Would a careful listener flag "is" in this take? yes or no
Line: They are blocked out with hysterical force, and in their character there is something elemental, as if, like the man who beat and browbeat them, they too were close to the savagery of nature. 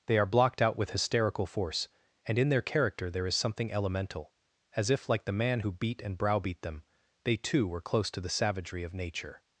no